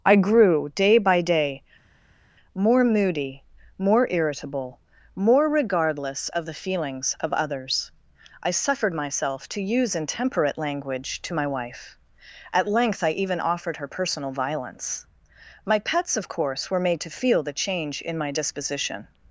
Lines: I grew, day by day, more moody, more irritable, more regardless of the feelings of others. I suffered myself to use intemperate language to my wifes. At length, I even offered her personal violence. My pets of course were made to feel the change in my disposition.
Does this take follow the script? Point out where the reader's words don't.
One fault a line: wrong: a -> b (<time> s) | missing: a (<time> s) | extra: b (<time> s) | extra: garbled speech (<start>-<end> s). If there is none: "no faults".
wrong: wifes -> wife (11.5 s)